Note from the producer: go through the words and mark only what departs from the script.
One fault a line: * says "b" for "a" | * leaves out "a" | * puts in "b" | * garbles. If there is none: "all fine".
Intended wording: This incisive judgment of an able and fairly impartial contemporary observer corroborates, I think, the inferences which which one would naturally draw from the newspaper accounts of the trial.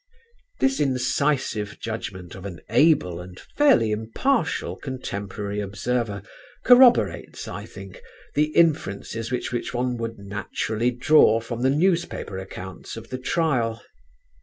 all fine